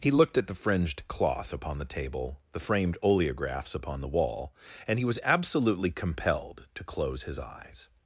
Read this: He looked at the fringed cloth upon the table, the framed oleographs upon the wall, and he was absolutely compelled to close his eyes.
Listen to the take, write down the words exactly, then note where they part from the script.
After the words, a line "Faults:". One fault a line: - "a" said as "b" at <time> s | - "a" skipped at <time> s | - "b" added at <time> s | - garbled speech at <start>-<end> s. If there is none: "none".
He looked at the fringed cloth upon the table, the framed oleographs upon the wall, and he was absolutely compelled to close his eyes.
Faults:
none